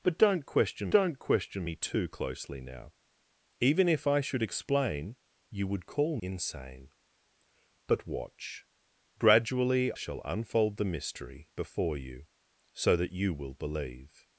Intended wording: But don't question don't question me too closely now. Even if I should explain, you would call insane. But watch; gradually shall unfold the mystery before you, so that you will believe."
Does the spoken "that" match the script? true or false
true